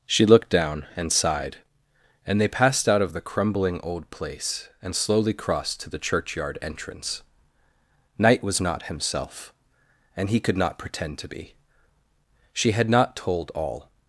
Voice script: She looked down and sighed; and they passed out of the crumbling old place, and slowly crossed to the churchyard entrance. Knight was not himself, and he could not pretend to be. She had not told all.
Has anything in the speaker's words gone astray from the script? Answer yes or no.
no